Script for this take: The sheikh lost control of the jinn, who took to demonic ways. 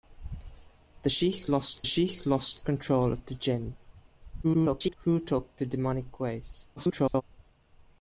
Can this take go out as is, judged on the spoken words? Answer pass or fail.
fail